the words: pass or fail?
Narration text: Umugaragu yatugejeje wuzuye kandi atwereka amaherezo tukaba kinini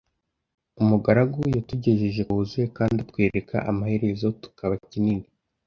pass